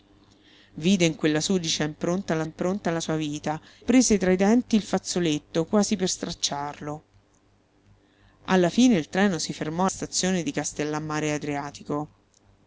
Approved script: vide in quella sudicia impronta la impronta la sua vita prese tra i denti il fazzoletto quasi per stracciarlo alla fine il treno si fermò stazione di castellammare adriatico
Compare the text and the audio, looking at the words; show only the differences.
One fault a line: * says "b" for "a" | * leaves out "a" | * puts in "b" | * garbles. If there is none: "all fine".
all fine